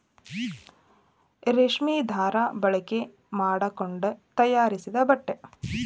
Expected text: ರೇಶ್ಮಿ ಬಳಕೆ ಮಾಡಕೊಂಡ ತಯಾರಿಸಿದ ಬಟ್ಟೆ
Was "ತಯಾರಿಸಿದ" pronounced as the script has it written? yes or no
yes